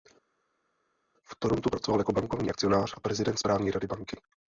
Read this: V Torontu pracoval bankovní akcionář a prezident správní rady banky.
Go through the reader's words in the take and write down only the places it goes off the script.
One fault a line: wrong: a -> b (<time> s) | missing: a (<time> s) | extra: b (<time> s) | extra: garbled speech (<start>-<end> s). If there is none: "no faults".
extra: jako (2.0 s)